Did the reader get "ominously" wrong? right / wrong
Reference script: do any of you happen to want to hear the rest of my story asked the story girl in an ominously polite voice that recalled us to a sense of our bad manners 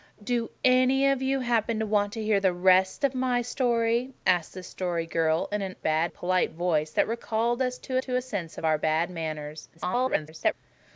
wrong